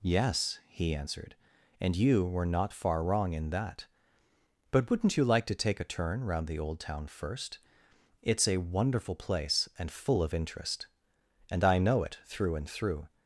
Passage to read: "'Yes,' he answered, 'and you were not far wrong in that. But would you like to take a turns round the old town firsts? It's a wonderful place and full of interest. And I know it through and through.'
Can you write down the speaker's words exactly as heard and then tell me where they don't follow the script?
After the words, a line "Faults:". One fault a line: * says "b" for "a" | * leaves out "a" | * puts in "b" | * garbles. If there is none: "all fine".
"'Yes,' he answered, 'and you were not far wrong in that. But wouldn't you like to take a turn round the old town first? It's a wonderful place and full of interest. And I know it through and through.'
Faults:
* says "wouldn't" for "would"
* says "turn" for "turns"
* says "first" for "firsts"